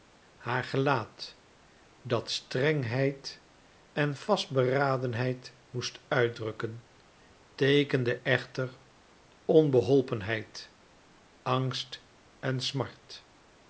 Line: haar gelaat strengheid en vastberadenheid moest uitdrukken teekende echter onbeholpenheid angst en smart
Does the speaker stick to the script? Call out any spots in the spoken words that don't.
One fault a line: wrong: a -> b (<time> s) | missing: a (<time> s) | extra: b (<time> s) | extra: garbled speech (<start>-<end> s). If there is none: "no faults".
extra: dat (2.0 s)